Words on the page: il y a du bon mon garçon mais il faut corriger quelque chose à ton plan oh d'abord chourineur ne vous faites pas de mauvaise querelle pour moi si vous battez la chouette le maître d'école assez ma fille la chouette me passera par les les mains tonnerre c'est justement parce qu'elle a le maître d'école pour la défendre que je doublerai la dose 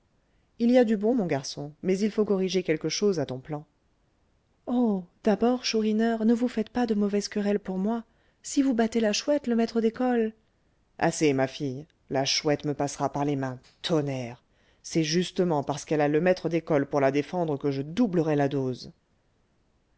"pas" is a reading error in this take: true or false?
false